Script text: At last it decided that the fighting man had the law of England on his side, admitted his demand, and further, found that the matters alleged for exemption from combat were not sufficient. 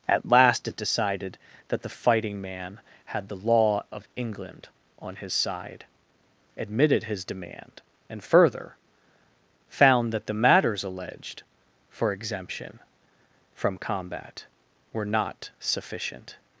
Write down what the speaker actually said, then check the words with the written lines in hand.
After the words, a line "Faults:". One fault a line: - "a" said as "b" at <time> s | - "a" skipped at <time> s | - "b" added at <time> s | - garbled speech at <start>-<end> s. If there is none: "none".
At last it decided that the fighting man had the law of England on his side, admitted his demand, and further, found that the matters alleged for exemption from combat were not sufficient.
Faults:
none